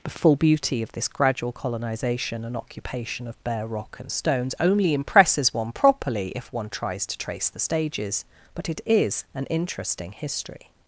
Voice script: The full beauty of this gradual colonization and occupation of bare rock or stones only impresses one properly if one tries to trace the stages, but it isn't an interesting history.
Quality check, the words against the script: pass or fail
fail